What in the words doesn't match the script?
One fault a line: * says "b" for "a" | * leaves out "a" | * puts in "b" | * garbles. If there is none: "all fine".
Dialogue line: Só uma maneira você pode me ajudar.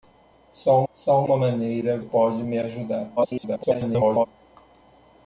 * puts in "só"
* leaves out "você"
* garbles